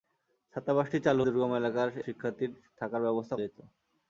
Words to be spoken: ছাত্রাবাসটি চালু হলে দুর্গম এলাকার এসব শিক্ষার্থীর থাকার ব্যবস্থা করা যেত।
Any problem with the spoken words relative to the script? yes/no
yes